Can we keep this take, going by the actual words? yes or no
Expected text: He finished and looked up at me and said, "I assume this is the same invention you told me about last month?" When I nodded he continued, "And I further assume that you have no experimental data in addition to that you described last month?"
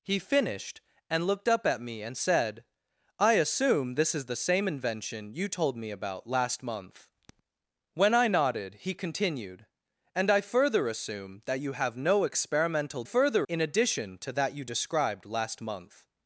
no